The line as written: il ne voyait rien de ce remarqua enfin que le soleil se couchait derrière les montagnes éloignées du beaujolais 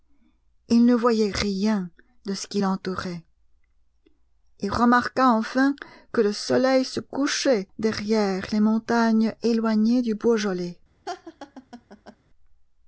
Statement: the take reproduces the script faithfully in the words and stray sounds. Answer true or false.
false